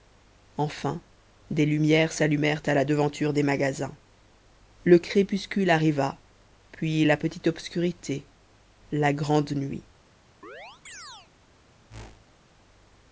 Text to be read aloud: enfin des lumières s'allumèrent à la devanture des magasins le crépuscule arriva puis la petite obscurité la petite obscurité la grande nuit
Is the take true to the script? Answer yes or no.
no